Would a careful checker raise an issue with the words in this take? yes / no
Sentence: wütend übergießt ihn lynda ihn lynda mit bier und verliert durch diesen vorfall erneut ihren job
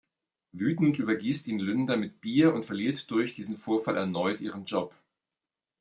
yes